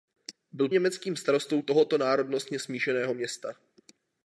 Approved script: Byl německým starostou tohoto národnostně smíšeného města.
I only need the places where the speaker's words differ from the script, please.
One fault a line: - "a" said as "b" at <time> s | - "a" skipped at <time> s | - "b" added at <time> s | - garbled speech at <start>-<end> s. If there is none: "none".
none